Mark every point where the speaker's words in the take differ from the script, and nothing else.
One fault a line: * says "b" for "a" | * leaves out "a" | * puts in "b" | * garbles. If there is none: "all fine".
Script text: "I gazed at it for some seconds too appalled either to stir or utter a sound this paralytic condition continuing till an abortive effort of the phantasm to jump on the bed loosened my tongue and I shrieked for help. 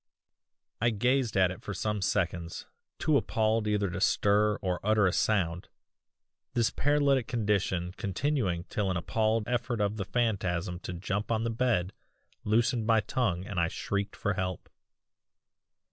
* says "appalled" for "abortive"